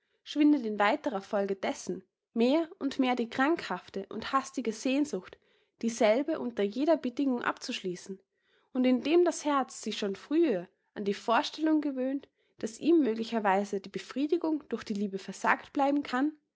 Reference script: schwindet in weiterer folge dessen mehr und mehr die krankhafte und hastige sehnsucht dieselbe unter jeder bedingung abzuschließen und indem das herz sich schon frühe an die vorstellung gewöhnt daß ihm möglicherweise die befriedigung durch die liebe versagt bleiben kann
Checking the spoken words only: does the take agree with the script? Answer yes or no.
yes